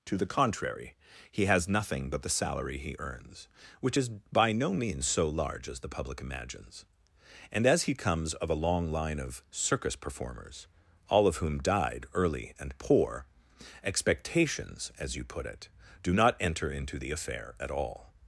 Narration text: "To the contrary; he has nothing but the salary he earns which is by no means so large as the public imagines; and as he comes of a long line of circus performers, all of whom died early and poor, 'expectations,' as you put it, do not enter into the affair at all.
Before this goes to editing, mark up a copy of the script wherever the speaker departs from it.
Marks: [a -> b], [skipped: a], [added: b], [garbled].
"To the contrary; he has nothing but the salary he earns which is by no means so large as the public imagines; and as he comes of a long line of circus performers, all of whom died early and poor, 'expectations,' as you put it, do not enter into the affair at all.